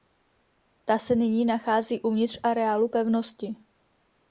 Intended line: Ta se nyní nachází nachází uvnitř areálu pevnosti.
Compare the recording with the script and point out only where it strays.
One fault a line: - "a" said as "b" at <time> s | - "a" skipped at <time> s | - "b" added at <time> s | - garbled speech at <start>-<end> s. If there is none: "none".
- "nachází" skipped at 2.0 s